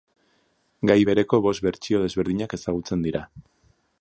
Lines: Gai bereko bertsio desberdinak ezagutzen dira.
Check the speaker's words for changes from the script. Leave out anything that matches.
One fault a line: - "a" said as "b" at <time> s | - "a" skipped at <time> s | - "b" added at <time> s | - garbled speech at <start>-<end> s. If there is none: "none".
- "bost" added at 1.5 s